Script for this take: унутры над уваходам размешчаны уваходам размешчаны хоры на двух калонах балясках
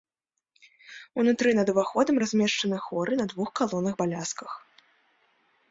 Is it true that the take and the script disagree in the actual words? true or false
true